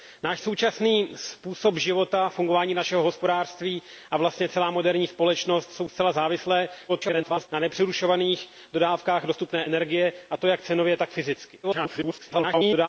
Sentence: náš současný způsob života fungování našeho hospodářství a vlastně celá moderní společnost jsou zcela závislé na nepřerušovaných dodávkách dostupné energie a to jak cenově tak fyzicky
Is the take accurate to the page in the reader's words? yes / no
no